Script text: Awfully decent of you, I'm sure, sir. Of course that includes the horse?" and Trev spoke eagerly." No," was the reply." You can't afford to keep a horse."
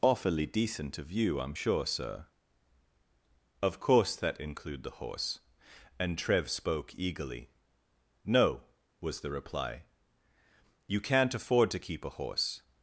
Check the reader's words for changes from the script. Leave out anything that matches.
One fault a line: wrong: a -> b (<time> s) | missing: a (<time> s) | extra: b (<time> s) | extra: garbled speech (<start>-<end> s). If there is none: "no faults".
wrong: includes -> include (4.4 s)